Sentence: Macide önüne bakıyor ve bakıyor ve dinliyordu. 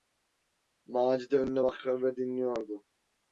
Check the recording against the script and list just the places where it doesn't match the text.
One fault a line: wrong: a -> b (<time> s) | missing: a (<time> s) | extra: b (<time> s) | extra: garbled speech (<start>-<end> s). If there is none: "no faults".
missing: bakıyor ve (2.2 s)